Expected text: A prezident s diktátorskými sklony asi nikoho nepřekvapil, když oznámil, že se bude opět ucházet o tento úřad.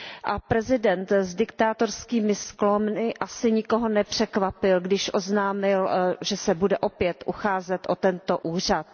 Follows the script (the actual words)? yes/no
yes